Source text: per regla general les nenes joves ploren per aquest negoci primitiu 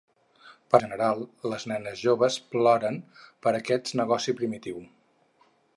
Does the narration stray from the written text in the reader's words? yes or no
yes